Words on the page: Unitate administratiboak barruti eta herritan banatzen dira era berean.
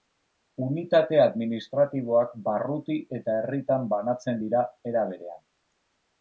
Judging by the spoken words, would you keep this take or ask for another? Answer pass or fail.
pass